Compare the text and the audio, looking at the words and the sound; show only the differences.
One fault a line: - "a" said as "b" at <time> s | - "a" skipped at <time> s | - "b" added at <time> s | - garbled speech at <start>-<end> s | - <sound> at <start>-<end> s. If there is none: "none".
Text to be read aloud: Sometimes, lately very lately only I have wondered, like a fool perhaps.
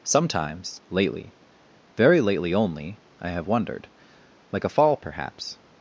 - "fool" said as "fall" at 4.7 s